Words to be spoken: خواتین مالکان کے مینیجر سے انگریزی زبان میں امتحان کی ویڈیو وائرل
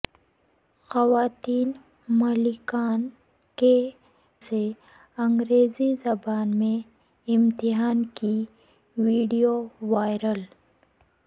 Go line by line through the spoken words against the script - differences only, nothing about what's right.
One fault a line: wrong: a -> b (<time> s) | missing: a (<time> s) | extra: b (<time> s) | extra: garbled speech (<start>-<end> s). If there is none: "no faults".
missing: مینیجر (3.7 s)